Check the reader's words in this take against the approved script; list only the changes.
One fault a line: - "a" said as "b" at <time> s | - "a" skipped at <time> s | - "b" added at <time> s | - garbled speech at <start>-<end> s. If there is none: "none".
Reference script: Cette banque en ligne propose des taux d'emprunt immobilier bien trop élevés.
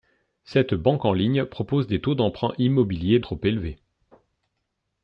- "bien" skipped at 3.2 s